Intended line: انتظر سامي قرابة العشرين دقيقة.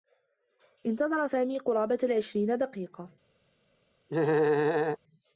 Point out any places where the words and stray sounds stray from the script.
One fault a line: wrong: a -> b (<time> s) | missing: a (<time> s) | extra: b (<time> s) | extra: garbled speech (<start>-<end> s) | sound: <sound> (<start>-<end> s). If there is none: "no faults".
sound: laugh (4.1-5.0 s)